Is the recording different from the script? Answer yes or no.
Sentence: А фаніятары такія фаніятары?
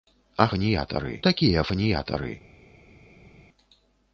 no